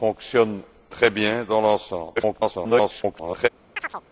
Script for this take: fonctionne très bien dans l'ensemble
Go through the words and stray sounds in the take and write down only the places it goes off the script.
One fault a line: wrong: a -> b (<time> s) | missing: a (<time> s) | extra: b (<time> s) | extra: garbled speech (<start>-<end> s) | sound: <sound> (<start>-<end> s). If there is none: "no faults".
extra: garbled speech (2.2-3.5 s)
sound: chirp (3.8-4.0 s)